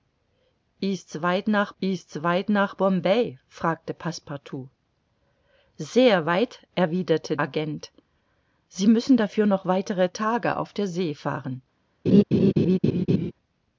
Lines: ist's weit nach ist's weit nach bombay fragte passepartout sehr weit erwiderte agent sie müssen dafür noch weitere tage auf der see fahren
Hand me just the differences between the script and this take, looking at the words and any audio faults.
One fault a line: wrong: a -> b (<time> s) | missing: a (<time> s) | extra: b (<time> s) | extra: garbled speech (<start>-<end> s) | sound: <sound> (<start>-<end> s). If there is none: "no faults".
sound: laugh (12.1-13.3 s)